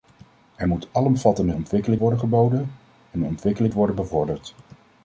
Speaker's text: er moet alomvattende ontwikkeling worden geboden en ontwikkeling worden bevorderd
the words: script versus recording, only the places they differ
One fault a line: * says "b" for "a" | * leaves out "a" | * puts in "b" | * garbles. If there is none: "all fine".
all fine